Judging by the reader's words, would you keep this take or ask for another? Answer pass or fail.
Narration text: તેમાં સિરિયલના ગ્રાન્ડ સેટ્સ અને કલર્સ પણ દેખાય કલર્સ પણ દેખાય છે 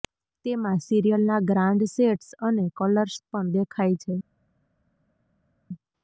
fail